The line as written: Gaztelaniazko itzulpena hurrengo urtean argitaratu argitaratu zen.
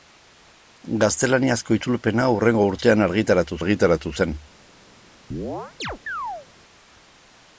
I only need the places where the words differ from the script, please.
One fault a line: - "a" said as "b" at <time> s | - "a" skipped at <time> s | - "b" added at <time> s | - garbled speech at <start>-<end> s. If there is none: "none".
none